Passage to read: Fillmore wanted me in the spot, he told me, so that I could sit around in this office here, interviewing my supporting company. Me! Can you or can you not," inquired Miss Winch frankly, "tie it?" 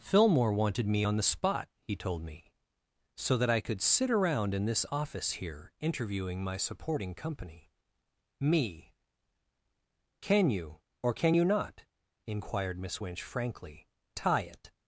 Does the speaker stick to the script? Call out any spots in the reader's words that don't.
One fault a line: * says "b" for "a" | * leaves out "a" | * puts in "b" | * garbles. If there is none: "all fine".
* says "on" for "in"